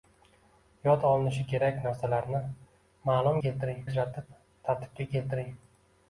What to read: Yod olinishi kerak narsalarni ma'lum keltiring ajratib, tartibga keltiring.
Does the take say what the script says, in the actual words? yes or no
yes